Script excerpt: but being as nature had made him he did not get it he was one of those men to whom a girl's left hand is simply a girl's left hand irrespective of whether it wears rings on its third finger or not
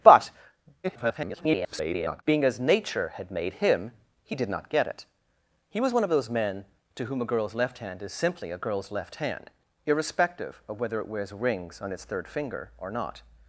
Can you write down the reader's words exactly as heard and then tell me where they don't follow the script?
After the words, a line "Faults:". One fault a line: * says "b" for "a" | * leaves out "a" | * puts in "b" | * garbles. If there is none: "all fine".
but [garbled] being as nature had made him he did not get it he was one of those men to whom a girl's left hand is simply a girl's left hand irrespective of whether it wears rings on its third finger or not
Faults:
* garbles